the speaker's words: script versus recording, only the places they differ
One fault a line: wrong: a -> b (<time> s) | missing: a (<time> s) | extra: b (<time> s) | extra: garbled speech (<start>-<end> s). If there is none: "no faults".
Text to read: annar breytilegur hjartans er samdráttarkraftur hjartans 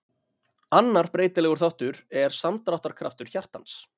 wrong: hjartans -> þáttur (1.6 s)